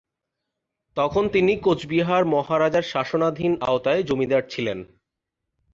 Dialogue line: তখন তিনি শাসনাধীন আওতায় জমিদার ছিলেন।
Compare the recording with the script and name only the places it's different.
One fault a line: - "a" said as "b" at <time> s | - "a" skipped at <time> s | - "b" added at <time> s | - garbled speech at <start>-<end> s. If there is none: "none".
- "কোচবিহার মহারাজার" added at 1.6 s